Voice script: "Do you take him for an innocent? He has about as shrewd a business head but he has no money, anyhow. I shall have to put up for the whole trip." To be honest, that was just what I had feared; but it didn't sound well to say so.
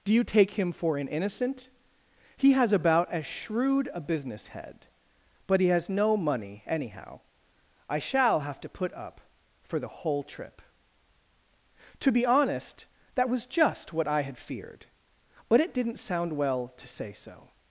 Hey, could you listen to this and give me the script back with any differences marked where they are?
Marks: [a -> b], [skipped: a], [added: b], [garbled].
"Do you take him for an innocent? He has about as shrewd a business head but he has no money, anyhow. I shall have to put up for the whole trip." To be honest, that was just what I had feared; but it didn't sound well to say so.